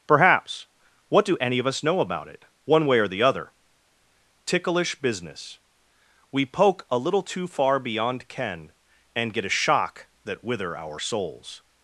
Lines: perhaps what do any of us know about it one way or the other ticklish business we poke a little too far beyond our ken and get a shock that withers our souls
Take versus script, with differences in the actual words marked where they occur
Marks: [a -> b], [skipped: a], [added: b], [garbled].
perhaps what do any of us know about it one way or the other ticklish business we poke a little too far beyond [skipped: our] ken and get a shock that [withers -> wither] our souls